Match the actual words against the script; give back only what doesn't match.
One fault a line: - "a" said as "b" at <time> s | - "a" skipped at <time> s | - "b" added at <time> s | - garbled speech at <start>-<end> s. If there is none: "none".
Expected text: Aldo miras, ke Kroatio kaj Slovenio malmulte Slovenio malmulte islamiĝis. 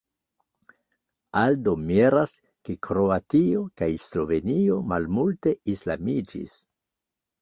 - "Slovenio malmulte" skipped at 5.5 s